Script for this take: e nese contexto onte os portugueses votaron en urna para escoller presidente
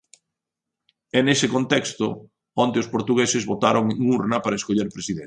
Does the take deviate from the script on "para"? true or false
false